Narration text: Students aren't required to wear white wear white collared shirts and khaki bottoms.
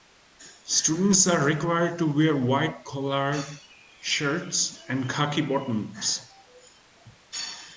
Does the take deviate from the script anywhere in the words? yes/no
yes